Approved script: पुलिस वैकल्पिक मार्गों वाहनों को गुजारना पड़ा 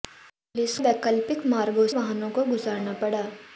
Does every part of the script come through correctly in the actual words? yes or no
yes